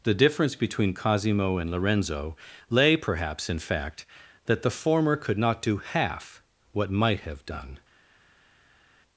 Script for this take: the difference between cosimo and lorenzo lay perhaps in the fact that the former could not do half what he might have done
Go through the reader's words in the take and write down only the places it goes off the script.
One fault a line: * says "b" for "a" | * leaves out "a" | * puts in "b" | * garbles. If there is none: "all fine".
* leaves out "the"
* leaves out "he"